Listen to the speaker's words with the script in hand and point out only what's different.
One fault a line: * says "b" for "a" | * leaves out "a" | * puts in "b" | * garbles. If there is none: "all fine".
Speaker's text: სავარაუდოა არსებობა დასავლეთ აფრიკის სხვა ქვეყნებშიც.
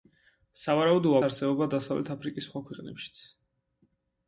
all fine